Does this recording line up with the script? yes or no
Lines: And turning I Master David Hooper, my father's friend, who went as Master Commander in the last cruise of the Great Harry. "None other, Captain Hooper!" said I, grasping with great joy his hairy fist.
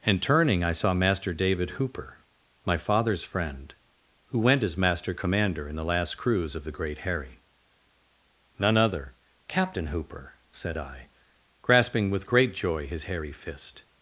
no